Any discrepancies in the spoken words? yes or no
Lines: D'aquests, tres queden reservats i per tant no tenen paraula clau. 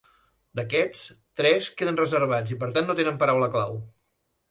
no